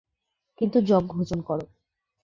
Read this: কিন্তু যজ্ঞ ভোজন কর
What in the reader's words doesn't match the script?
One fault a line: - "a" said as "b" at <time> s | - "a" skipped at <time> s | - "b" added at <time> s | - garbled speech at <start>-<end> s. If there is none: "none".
none